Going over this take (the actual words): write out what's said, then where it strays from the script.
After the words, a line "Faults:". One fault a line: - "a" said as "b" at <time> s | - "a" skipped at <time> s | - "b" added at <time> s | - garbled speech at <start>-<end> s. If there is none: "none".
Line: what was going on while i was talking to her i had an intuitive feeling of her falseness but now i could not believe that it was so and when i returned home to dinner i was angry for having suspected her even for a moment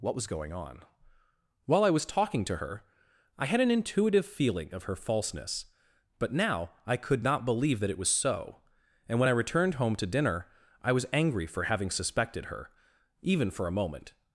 what was going on while i was talking to her i had an intuitive feeling of her falseness but now i could not believe that it was so and when i returned home to dinner i was angry for having suspected her even for a moment
Faults:
none